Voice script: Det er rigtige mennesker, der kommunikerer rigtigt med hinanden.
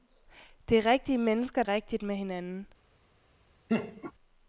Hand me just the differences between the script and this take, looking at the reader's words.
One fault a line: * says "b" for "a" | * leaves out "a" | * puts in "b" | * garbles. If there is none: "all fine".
* leaves out "der kommunikerer"